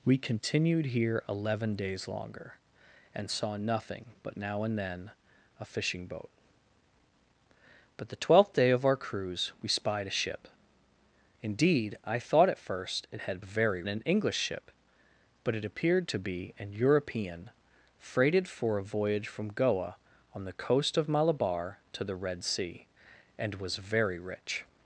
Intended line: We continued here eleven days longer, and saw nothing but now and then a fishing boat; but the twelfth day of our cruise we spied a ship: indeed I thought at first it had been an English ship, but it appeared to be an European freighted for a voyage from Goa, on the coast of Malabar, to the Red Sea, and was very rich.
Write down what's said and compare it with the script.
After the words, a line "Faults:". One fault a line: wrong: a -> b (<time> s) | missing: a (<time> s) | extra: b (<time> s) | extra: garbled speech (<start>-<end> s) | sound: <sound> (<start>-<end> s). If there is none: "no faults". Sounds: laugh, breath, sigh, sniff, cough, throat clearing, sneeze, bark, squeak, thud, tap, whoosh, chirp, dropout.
We continued here eleven days longer, and saw nothing but now and then a fishing boat; but the twelfth day of our cruise we spied a ship: indeed I thought at first it had very an English ship, but it appeared to be an European freighted for a voyage from Goa, on the coast of Malabar, to the Red Sea, and was very rich.
Faults:
wrong: been -> very (13.4 s)